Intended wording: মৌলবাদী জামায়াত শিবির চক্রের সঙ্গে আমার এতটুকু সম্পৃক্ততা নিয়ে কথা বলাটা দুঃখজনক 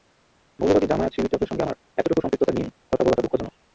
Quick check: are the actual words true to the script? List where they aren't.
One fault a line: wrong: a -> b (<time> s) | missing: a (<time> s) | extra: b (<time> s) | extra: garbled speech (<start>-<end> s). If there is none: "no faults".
no faults